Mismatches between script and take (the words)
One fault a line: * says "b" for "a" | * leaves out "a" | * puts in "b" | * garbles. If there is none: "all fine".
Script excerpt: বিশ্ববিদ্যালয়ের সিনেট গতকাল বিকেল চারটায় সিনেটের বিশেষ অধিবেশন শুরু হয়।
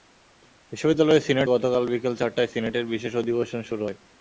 all fine